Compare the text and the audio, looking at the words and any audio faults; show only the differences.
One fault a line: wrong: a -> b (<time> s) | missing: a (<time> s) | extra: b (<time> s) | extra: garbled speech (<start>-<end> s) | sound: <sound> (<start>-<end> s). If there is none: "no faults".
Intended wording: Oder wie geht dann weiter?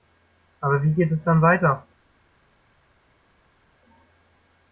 wrong: Oder -> Aber (0.6 s)
extra: es (1.1 s)